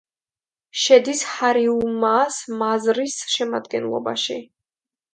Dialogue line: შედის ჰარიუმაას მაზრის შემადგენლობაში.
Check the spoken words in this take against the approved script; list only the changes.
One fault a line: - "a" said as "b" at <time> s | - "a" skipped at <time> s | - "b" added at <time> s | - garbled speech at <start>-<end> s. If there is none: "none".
none